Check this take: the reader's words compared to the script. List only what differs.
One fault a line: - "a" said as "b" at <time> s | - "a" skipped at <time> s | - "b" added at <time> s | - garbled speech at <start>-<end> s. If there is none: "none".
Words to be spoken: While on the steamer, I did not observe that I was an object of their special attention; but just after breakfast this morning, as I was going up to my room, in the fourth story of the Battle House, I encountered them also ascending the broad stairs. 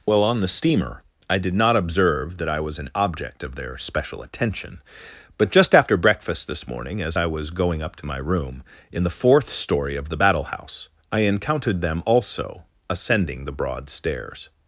none